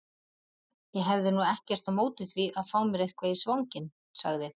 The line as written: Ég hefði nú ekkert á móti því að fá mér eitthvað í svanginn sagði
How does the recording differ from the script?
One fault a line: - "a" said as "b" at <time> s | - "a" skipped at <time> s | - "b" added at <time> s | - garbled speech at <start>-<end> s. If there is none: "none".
none